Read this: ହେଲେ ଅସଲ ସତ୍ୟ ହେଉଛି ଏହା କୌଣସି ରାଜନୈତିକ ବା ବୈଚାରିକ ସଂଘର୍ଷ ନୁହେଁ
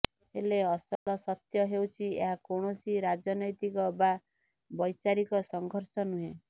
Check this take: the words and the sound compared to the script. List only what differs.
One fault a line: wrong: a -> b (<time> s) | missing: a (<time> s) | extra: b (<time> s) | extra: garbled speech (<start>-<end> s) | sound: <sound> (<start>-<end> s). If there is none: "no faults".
sound: dropout (1.0-1.1 s)